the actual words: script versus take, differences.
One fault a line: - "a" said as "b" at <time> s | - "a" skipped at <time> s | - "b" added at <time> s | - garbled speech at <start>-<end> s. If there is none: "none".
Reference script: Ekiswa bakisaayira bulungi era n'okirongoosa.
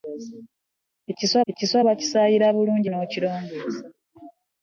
- "ekiswa" added at 1.5 s
- "era" skipped at 2.9 s